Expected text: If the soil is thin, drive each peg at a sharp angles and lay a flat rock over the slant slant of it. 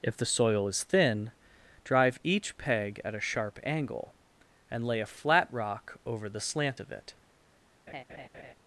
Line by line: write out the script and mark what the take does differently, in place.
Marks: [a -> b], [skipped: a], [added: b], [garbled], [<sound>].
If the soil is thin, drive each peg at a sharp [angles -> angle] and lay a flat rock over the slant [skipped: slant] of it. [laugh]